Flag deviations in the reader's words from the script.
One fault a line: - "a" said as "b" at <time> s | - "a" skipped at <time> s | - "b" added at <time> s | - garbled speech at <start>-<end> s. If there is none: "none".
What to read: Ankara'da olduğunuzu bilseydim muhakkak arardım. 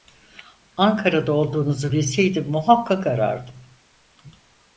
none